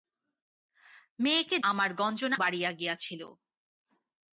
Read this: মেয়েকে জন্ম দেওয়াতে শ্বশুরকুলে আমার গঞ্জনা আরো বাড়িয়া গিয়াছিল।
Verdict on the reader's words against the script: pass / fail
fail